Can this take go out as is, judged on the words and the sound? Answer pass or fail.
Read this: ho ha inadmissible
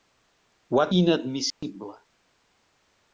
fail